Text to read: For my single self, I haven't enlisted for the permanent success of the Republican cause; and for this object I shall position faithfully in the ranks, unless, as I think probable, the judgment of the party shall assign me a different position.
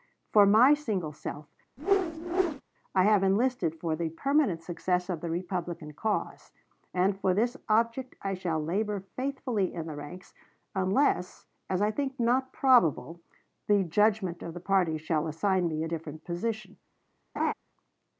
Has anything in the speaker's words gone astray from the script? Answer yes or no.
yes